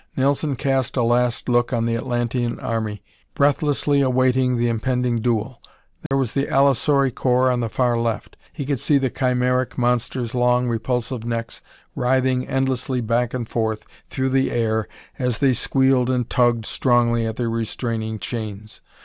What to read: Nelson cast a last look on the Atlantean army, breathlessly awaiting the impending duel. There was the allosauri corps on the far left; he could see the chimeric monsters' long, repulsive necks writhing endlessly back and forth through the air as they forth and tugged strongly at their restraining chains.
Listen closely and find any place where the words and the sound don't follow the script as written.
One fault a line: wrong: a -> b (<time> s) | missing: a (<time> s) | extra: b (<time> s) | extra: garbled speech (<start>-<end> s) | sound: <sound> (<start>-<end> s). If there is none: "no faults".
sound: dropout (6.1-6.1 s)
wrong: forth -> squealed (15.5 s)